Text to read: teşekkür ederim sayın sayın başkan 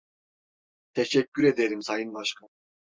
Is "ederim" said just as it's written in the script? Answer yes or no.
yes